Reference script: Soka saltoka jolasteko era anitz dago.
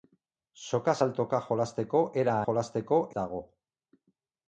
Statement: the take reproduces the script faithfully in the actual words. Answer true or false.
false